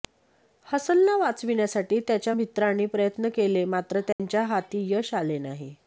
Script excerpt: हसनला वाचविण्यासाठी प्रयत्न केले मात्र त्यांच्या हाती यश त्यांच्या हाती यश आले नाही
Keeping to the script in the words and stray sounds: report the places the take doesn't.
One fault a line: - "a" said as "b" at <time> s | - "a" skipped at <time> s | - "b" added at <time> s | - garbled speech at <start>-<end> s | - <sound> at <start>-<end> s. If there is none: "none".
- "त्याच्या मित्रांनी" added at 2.0 s
- dropout at 4.1-4.2 s
- "त्यांच्या हाती यश" skipped at 5.1 s